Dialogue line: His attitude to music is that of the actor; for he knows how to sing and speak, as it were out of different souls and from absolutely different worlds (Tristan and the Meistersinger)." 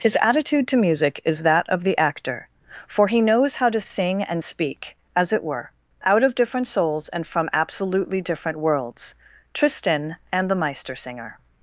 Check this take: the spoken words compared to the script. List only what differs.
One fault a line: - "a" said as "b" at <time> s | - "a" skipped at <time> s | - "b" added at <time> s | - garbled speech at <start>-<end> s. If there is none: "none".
none